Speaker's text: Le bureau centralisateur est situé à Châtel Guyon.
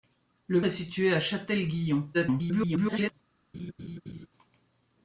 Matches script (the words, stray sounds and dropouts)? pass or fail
fail